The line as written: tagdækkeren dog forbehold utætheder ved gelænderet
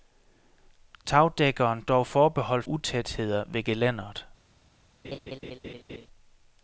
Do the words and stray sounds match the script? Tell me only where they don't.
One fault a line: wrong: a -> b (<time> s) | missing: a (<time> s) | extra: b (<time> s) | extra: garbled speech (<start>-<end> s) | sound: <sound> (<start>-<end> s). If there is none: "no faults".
sound: laugh (5.0-6.1 s)